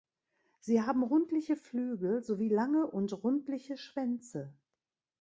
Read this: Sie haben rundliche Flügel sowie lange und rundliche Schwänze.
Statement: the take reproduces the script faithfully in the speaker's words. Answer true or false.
true